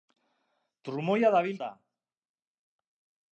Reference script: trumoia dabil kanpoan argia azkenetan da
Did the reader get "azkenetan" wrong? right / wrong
wrong